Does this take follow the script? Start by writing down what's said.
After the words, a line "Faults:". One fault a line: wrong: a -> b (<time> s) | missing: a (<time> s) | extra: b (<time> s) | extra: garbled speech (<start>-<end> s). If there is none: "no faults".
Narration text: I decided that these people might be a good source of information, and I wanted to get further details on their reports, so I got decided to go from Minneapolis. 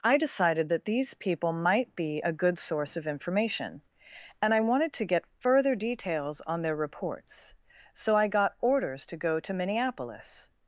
I decided that these people might be a good source of information, and I wanted to get further details on their reports, so I got orders to go to Minneapolis.
Faults:
wrong: decided -> orders (8.6 s)
wrong: from -> to (9.4 s)